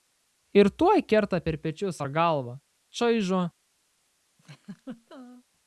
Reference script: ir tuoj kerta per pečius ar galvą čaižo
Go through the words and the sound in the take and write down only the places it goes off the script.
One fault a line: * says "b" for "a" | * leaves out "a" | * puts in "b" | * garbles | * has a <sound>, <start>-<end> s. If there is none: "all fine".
* has a laugh, 4.4-5.4 s